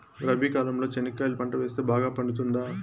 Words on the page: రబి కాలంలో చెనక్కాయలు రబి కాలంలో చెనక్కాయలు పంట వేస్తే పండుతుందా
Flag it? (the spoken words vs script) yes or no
yes